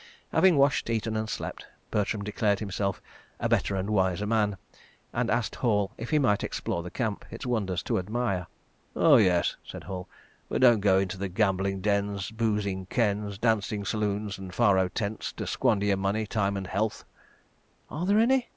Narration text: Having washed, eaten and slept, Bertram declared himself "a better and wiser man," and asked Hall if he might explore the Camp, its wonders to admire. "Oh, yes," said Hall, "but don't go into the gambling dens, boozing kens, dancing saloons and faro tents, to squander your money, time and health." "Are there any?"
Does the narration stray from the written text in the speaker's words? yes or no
no